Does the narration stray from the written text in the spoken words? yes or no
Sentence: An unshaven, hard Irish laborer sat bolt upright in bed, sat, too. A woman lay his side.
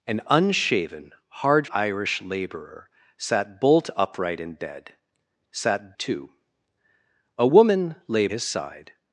no